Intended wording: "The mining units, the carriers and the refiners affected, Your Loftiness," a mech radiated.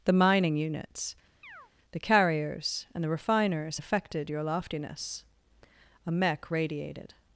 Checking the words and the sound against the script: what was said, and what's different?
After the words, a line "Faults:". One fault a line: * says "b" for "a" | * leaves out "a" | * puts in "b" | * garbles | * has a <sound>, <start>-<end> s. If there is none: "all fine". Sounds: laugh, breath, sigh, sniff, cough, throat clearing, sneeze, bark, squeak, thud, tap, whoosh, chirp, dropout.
"The mining units, the carriers and the refiners affected, Your Loftiness," a mech radiated.
Faults:
* has a chirp, 1.4-1.7 s